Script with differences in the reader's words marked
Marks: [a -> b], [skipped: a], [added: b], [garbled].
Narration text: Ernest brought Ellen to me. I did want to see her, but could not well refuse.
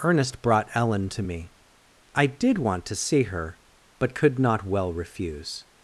Ernest brought Ellen to me. I did want to see her, but could not well refuse.